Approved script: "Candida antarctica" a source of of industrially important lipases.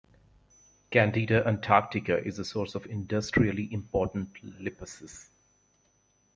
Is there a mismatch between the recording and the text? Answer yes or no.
yes